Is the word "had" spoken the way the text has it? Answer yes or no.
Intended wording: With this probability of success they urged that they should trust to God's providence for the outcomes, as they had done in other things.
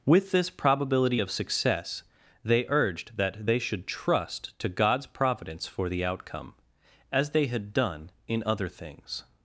yes